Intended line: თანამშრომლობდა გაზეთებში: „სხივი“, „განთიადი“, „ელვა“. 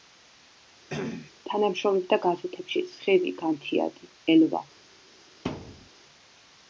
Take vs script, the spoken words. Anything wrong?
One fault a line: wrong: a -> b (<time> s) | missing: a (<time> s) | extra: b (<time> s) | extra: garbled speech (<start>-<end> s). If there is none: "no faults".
no faults